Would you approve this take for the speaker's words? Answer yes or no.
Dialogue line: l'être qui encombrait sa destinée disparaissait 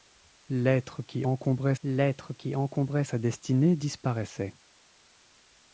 no